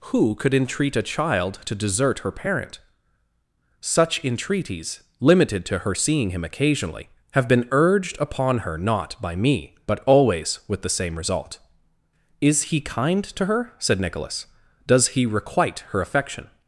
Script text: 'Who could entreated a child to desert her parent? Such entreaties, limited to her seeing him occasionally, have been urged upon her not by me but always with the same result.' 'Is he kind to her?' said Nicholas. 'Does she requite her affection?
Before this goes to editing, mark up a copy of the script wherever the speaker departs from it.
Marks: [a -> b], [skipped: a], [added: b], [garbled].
'Who could [entreated -> entreat] a child to desert her parent? Such entreaties, limited to her seeing him occasionally, have been urged upon her not by me but always with the same result.' 'Is he kind to her?' said Nicholas. 'Does [she -> he] requite her affection?